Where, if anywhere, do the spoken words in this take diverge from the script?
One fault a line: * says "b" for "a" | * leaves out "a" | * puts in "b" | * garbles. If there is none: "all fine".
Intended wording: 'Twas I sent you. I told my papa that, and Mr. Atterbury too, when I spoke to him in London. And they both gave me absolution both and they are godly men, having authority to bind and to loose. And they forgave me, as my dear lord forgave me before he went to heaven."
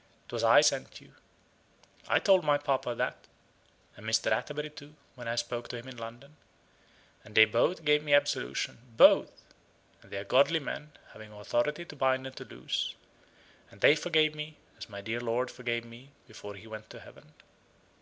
all fine